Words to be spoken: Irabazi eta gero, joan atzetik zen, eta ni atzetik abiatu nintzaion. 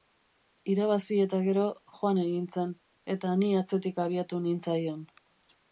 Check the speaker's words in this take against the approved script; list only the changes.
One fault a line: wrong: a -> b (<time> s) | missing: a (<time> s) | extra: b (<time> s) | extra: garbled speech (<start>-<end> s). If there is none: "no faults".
wrong: atzetik -> egin (2.2 s)